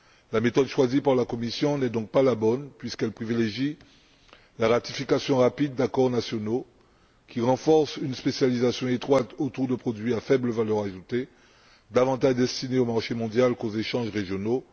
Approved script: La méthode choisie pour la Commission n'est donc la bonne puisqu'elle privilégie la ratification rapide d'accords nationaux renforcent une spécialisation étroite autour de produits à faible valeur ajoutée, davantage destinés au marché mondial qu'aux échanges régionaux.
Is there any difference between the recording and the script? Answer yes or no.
yes